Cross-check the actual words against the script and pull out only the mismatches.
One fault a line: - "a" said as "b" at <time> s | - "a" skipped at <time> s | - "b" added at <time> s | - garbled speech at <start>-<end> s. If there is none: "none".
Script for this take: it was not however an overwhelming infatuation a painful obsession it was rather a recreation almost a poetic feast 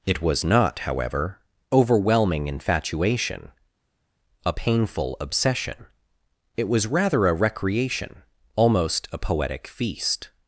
- "an" skipped at 1.4 s